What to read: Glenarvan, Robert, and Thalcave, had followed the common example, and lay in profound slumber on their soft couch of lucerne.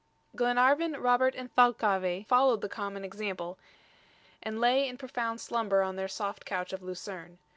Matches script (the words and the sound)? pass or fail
fail